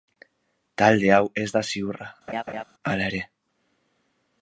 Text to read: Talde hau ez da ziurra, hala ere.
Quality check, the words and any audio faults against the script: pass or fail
fail